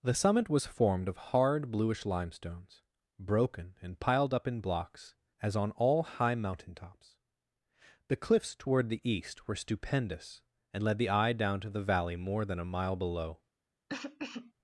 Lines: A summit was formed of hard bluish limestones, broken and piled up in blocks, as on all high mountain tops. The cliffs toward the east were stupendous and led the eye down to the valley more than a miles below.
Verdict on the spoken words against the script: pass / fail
fail